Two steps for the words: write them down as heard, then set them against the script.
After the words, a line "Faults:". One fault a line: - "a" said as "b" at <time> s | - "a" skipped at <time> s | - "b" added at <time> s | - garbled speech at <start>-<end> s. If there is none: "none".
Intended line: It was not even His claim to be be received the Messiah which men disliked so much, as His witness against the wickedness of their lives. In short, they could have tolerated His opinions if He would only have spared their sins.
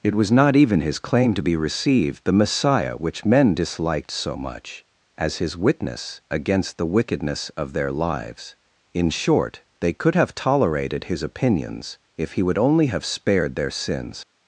It was not even His claim to be received the Messiah which men disliked so much, as His witness against the wickedness of their lives. In short, they could have tolerated His opinions if He would only have spared their sins.
Faults:
- "be" skipped at 1.6 s